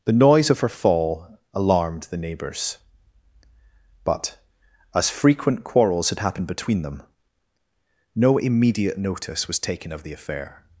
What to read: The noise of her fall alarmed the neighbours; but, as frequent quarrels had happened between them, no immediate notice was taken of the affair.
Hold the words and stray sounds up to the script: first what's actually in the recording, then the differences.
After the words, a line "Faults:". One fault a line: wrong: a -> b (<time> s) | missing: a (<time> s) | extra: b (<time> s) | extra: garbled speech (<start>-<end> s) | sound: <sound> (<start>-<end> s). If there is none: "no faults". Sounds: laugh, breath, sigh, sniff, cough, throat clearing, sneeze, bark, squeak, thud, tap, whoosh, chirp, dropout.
The noise of her fall alarmed the neighbours; but, as frequent quarrels had happened between them, no immediate notice was taken of the affair.
Faults:
no faults